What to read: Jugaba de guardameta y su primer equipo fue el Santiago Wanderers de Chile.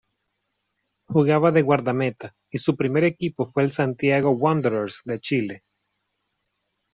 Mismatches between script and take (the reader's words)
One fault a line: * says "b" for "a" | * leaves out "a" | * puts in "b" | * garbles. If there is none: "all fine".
all fine